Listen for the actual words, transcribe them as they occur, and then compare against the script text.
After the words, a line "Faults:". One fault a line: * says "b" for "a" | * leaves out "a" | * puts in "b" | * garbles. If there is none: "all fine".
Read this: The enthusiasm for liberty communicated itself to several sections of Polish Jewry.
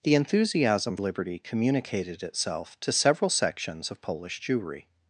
The enthusiasm liberty communicated itself to several sections of Polish Jewry.
Faults:
* leaves out "for"